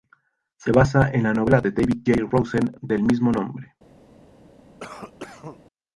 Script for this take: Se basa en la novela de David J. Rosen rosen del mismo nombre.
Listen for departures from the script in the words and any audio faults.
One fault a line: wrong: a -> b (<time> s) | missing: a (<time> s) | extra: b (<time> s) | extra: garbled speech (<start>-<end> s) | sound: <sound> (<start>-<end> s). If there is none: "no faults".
missing: rosen (2.7 s)
sound: cough (4.8-5.6 s)